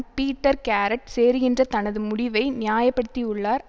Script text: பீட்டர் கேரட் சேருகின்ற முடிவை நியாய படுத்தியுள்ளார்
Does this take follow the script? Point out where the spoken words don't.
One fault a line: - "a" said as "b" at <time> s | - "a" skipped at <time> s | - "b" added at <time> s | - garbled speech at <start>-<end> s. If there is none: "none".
- "தனது" added at 1.7 s